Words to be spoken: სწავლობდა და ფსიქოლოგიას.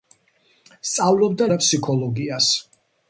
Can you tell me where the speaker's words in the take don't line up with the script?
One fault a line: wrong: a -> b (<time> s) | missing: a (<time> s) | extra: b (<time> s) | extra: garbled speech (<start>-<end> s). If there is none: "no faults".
no faults